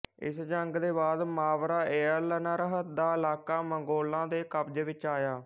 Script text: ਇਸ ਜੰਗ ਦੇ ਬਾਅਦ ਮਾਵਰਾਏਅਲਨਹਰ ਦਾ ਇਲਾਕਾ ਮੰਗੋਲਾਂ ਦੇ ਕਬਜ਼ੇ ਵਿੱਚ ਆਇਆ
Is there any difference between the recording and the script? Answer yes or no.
no